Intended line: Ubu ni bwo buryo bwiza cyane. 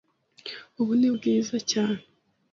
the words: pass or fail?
fail